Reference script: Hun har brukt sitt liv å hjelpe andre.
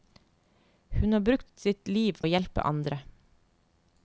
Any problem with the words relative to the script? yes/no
no